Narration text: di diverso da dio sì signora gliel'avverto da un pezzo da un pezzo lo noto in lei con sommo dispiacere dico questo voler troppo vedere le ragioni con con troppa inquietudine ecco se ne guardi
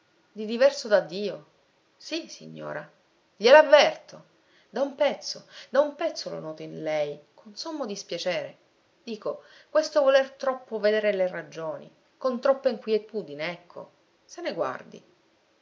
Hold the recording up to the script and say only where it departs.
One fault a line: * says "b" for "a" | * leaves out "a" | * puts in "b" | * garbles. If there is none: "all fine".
* leaves out "con"